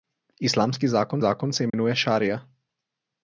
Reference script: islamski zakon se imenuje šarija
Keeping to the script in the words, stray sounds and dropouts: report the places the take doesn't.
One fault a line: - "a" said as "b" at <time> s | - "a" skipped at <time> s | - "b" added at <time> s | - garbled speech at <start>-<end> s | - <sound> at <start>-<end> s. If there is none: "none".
- "zakon" added at 1.2 s
- dropout at 1.7-1.7 s